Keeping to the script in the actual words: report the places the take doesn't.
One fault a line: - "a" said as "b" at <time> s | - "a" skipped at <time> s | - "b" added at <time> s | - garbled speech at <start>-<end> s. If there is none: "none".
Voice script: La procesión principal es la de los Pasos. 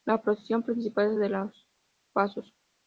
none